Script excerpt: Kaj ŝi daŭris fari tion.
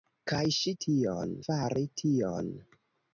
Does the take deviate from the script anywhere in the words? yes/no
yes